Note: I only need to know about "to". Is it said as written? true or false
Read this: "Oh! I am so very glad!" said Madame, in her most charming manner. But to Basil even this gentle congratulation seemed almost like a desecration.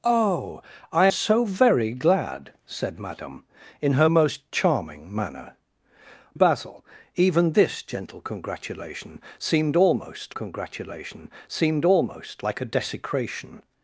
false